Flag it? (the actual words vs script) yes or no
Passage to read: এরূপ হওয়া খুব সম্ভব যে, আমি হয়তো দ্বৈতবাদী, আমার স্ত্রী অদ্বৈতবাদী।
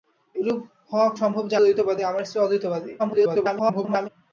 yes